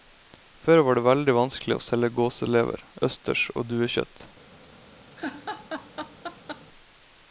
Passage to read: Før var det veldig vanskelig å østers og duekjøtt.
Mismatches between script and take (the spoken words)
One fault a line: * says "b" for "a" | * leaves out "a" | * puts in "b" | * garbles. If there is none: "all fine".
* puts in "selge gåselever"